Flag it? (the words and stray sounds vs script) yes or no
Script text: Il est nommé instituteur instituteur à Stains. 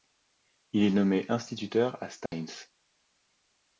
yes